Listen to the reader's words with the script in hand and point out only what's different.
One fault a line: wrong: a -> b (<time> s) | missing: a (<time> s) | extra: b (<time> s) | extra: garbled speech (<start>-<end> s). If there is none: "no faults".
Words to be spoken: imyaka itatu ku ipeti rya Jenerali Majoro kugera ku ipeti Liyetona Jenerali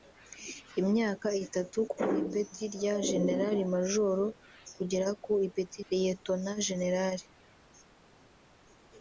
no faults